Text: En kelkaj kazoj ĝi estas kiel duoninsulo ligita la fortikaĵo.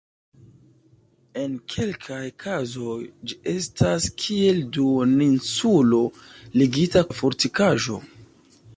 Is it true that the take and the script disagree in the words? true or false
false